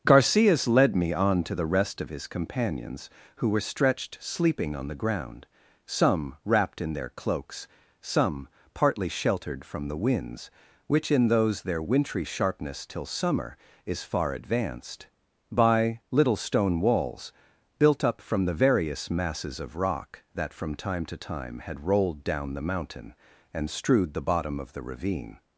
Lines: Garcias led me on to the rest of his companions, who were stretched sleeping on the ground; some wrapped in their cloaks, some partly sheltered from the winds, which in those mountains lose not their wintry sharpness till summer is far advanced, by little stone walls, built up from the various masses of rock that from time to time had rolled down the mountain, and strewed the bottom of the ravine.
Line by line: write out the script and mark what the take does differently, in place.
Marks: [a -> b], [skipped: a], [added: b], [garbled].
Garcias led me on to the rest of his companions, who were stretched sleeping on the ground; some wrapped in their cloaks, some partly sheltered from the winds, which in those [skipped: mountains lose not] their wintry sharpness till summer is far advanced, by little stone walls, built up from the various masses of rock that from time to time had rolled down the mountain, and strewed the bottom of the ravine.